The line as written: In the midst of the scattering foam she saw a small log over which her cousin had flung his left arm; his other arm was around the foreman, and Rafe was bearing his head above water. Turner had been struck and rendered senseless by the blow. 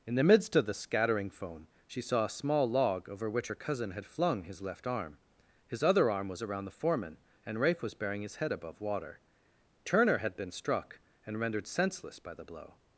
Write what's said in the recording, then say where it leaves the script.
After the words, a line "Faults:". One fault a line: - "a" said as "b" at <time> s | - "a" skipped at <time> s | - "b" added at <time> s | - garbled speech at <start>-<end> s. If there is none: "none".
In the midst of the scattering foam she saw a small log over which her cousin had flung his left arm; his other arm was around the foreman, and Rafe was bearing his head above water. Turner had been struck and rendered senseless by the blow.
Faults:
none